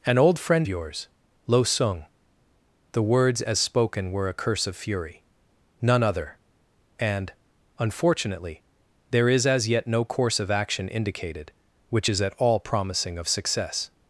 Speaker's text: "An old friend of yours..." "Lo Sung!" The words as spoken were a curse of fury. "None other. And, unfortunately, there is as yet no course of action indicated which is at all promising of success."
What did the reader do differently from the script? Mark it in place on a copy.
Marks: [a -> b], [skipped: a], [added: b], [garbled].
"An old friend [skipped: of] yours..." "Lo Sung!" The words as spoken were a curse of fury. "None other. And, unfortunately, there is as yet no course of action indicated which is at all promising of success."